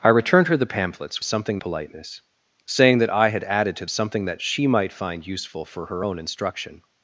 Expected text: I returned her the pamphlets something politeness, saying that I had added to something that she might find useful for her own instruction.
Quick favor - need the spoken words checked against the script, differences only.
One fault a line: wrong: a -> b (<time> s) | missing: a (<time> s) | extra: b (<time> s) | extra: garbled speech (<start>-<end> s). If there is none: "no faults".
no faults